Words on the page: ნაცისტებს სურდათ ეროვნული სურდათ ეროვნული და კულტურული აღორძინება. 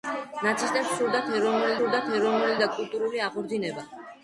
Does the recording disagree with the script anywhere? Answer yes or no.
no